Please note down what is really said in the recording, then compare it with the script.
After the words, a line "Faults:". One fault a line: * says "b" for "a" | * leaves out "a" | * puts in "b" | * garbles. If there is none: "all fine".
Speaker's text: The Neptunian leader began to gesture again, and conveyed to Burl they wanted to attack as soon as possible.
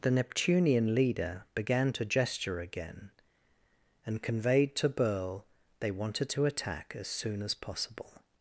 The Neptunian leader began to gesture again, and conveyed to Burl they wanted to attack as soon as possible.
Faults:
all fine